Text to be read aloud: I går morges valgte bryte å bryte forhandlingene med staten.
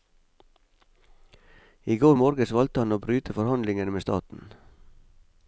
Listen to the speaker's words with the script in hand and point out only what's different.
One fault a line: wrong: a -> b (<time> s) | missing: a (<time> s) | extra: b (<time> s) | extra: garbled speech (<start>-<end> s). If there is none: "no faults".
wrong: bryte -> han (2.8 s)